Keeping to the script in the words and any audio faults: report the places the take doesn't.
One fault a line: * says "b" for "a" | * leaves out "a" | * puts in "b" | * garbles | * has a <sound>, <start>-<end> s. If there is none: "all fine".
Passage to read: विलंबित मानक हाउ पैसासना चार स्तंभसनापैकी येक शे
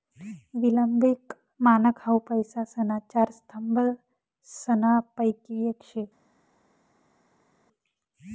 all fine